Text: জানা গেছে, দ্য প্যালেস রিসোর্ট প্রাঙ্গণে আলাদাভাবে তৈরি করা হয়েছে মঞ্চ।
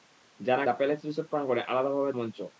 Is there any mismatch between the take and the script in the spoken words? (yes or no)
yes